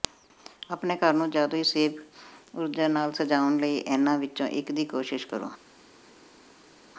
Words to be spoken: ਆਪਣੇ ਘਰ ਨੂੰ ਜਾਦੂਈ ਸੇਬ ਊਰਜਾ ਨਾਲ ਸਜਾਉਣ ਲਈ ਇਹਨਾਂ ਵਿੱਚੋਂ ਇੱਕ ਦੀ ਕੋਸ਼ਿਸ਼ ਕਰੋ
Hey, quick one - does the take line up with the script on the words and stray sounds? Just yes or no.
yes